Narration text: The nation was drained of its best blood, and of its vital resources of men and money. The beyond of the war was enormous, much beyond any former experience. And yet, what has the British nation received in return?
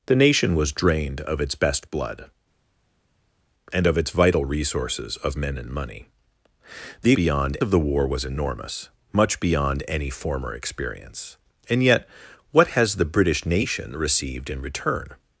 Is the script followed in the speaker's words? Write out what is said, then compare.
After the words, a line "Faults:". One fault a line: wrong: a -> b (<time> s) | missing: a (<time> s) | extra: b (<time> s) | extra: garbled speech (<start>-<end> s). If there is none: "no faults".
The nation was drained of its best blood, and of its vital resources of men and money. The beyond of the war was enormous, much beyond any former experience. And yet, what has the British nation received in return?
Faults:
no faults